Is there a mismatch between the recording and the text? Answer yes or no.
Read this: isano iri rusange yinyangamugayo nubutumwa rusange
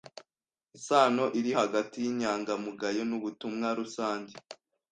yes